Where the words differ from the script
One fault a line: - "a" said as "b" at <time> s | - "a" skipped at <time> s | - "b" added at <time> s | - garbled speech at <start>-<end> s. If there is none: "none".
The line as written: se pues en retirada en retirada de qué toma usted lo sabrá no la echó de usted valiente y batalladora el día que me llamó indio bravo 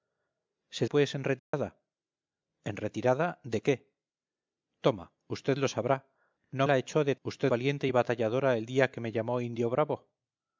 none